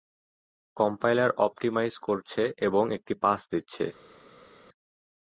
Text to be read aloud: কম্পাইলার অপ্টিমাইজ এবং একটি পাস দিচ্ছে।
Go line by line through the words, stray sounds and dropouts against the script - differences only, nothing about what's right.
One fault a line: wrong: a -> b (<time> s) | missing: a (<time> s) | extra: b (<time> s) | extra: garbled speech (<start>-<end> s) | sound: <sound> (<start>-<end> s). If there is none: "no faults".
extra: করছে (2.1 s)